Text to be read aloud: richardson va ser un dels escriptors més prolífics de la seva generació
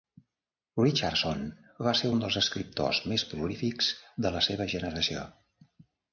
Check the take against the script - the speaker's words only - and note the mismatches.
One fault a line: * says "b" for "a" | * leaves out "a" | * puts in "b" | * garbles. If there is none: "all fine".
all fine